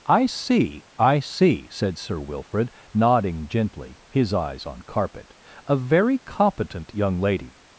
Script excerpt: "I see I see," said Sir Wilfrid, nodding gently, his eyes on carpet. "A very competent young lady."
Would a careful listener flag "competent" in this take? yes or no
no